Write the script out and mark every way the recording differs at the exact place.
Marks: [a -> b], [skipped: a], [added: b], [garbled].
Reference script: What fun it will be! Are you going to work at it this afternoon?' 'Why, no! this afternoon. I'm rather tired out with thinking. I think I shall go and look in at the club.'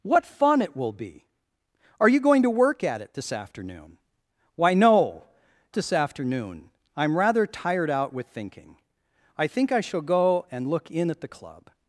What fun it will be! Are you going to work at it this afternoon?' 'Why, no! this afternoon. I'm rather tired out with thinking. I think I shall go and look in at the club.'